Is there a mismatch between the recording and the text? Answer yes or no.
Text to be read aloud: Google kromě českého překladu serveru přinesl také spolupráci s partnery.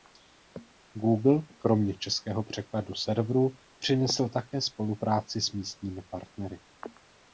yes